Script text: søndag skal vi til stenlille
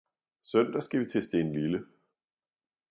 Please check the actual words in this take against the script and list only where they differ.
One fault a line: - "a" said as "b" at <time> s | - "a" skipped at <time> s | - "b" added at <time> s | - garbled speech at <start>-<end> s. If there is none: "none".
none